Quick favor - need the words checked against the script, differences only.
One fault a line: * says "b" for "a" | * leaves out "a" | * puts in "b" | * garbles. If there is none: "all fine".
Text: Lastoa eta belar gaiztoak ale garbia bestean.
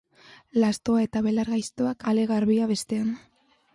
all fine